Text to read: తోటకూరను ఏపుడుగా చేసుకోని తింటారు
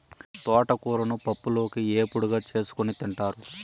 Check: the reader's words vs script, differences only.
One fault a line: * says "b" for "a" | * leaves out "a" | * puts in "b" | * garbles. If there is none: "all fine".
* puts in "పప్పులోకి"